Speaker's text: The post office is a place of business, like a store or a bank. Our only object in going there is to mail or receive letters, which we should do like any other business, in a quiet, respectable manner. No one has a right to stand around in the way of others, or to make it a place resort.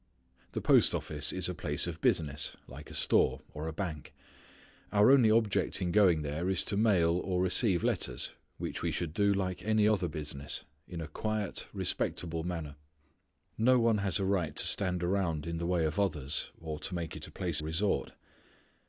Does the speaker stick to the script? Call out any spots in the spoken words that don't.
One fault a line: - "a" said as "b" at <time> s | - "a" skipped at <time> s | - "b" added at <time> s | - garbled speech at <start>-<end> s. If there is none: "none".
none